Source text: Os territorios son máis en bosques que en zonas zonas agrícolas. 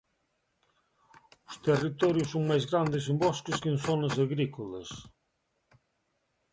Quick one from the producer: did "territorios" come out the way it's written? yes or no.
yes